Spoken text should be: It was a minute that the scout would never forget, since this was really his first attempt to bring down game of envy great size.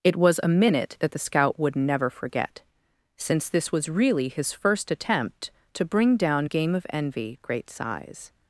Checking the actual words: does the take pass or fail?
pass